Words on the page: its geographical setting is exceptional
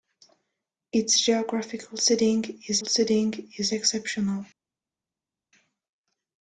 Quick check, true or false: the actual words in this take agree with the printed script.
false